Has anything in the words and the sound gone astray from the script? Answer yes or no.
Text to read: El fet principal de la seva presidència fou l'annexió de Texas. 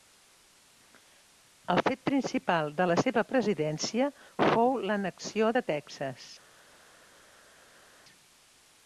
no